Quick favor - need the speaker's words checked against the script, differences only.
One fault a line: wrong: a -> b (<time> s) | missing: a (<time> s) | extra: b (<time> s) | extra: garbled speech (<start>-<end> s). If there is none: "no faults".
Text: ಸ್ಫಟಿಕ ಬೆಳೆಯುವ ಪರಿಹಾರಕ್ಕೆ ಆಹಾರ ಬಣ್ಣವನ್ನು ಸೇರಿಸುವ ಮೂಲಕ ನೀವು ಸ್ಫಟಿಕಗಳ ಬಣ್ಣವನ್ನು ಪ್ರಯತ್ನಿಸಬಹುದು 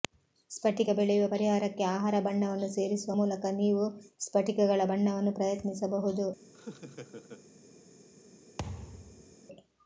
no faults